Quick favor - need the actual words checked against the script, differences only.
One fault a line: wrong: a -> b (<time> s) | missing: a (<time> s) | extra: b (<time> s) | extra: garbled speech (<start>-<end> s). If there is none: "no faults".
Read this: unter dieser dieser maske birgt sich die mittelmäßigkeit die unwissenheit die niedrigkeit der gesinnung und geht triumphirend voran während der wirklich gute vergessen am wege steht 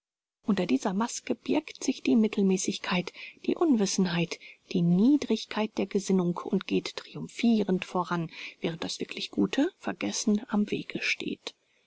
missing: dieser (0.9 s)
wrong: der -> das (8.8 s)